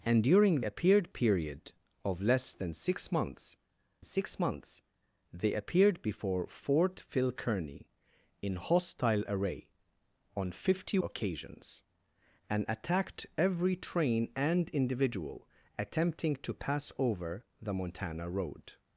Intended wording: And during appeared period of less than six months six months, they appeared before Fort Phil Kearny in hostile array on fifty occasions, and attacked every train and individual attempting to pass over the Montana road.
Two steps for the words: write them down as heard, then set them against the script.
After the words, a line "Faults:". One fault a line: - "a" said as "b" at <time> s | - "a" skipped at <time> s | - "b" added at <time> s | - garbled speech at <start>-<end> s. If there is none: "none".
And during appeared period of less than six months six months, they appeared before Fort Phil Kearny in hostile array on fifty occasions, and attacked every train and individual attempting to pass over the Montana road.
Faults:
none